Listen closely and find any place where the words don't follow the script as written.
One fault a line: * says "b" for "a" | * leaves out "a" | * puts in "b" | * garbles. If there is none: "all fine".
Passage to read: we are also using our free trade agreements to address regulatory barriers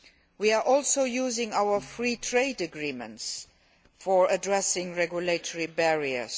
all fine